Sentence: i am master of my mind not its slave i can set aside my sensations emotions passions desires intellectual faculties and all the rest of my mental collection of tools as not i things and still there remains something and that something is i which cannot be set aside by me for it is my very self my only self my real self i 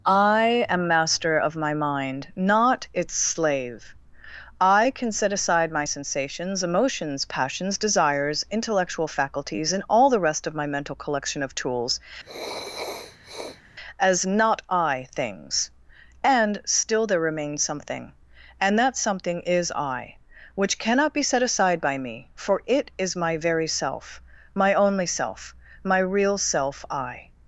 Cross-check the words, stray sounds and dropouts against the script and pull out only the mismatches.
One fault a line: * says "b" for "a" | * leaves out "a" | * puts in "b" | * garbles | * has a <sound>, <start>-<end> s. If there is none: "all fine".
* has a sniff, 12.2-13.6 s